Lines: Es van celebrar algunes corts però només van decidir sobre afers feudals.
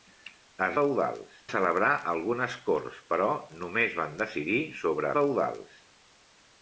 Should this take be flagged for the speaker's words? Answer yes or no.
yes